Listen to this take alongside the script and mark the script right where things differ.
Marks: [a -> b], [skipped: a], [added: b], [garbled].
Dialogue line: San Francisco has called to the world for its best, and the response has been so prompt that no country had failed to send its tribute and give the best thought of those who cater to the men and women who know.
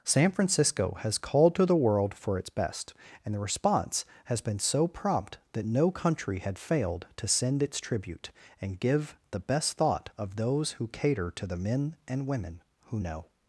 San Francisco has called to the world for its best, and the response has been so prompt that no country had failed to send its tribute and give the best thought of those who cater to the men and women who know.